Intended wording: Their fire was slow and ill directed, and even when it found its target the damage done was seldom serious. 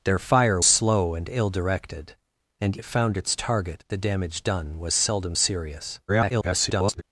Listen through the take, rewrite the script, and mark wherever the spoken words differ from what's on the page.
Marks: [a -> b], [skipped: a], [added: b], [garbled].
Their fire [skipped: was] slow and ill directed, and [skipped: even when] it found its target the damage done was seldom serious. [garbled]